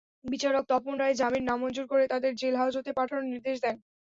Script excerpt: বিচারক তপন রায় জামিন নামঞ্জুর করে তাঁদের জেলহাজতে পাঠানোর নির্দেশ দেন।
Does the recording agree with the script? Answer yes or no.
yes